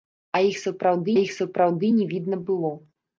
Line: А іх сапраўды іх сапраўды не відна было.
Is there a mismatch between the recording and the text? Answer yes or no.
no